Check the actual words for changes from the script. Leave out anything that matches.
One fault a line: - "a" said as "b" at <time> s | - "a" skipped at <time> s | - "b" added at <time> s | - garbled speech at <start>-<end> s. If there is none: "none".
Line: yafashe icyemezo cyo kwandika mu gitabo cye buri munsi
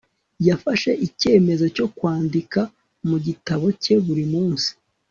none